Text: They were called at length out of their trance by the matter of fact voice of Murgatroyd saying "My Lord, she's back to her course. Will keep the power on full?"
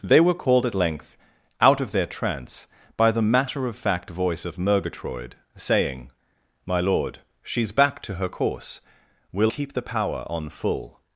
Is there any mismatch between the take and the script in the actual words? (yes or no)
no